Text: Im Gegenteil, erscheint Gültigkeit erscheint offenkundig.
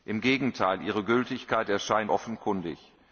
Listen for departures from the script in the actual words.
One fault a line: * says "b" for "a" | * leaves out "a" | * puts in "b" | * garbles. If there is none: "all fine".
* says "ihre" for "erscheint"